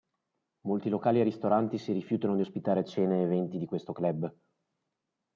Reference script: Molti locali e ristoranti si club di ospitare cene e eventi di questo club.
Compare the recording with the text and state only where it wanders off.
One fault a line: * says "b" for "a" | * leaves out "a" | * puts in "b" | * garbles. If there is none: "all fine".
* says "rifiutano" for "club"